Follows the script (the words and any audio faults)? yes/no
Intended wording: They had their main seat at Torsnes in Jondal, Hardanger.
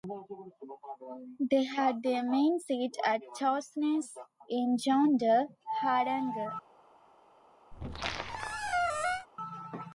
no